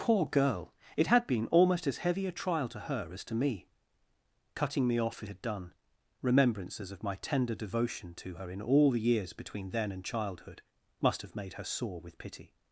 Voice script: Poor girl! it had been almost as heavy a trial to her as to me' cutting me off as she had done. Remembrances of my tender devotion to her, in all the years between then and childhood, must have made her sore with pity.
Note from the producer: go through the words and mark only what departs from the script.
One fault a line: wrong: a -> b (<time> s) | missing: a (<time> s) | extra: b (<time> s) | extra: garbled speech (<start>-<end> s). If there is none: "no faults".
missing: she (5.3 s)